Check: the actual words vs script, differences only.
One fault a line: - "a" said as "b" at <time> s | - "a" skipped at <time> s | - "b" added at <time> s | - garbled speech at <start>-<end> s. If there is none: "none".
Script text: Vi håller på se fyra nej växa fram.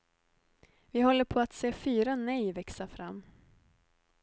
- "att" added at 1.4 s